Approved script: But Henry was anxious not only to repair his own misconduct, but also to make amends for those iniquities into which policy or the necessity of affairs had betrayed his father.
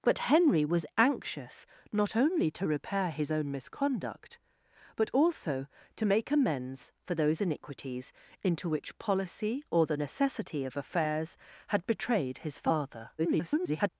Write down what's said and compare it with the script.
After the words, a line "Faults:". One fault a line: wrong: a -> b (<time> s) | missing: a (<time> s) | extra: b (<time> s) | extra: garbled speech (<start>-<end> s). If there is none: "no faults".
But Henry was anxious not only to repair his own misconduct, but also to make amends for those iniquities into which policy or the necessity of affairs had betrayed his father. [garbled]
Faults:
extra: garbled speech (13.2-13.9 s)